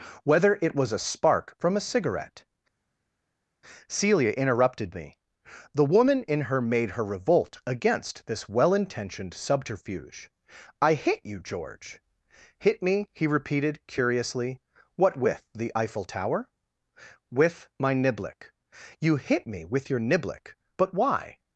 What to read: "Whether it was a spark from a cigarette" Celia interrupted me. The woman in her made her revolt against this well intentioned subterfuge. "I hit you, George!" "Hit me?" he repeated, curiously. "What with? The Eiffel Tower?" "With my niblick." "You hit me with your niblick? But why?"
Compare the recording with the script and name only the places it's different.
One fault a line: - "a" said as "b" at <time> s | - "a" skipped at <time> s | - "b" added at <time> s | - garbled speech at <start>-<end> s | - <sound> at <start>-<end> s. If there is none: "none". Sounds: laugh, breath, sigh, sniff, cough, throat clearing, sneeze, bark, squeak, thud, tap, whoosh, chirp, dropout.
none